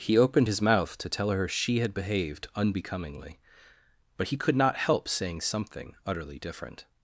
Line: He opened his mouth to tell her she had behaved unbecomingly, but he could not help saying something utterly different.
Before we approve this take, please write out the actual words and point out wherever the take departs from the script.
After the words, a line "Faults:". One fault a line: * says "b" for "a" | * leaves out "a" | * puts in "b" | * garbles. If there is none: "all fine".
He opened his mouth to tell her she had behaved unbecomingly, but he could not help saying something utterly different.
Faults:
all fine